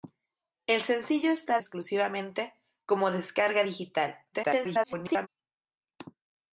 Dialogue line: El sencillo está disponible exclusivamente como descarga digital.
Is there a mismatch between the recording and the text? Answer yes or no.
yes